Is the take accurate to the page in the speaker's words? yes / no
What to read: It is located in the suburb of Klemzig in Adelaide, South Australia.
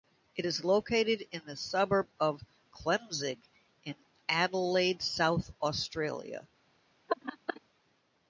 yes